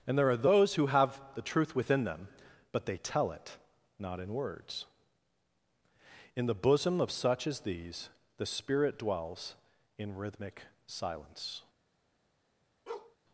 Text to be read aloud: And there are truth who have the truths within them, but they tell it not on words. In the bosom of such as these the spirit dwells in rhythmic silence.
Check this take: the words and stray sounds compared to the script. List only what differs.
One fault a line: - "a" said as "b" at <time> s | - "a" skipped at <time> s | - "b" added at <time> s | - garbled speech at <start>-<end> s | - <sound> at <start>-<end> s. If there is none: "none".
- "truth" said as "those" at 0.4 s
- "truths" said as "truth" at 1.4 s
- "on" said as "in" at 4.2 s
- bark at 12.9-13.2 s